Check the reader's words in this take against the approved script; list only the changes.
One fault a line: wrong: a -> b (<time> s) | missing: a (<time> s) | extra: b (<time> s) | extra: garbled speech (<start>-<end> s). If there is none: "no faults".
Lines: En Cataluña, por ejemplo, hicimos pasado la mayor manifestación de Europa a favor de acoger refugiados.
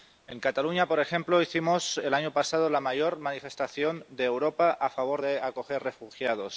extra: el año (2.0 s)